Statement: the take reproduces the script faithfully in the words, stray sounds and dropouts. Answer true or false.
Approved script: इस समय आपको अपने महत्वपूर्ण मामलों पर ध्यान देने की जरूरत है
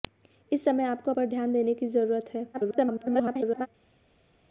false